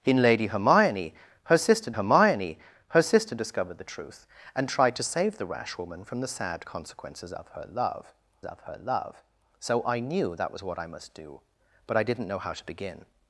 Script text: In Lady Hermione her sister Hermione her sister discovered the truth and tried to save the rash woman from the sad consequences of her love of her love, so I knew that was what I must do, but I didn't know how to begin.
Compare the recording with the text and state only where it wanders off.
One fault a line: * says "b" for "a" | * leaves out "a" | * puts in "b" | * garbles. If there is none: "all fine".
all fine